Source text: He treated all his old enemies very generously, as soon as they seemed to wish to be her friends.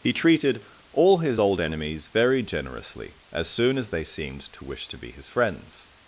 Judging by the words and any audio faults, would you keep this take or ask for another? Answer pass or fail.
fail